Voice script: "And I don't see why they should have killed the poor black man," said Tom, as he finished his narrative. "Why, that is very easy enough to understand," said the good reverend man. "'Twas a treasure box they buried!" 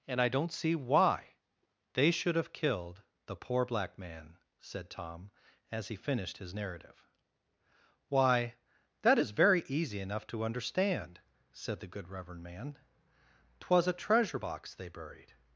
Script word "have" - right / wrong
right